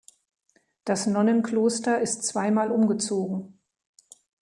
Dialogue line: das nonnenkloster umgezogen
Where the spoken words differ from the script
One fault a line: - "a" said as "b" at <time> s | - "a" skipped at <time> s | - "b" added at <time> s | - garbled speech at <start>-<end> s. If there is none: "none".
- "ist zweimal" added at 2.0 s